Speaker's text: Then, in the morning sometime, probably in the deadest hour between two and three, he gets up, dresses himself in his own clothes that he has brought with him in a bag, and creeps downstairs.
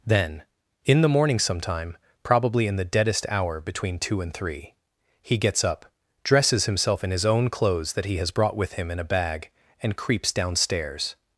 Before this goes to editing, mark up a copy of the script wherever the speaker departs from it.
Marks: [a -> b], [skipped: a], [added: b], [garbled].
Then, in the morning sometime, probably in the deadest hour between two and three, he gets up, dresses himself in his own clothes that he has brought with him in a bag, and creeps downstairs.